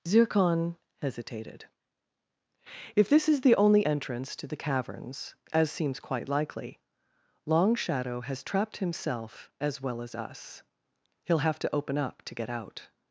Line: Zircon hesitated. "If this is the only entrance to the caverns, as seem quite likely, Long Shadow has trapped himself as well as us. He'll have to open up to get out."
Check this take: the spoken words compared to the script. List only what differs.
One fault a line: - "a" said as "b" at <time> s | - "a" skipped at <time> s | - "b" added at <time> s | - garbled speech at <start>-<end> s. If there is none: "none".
- "seem" said as "seems" at 5.7 s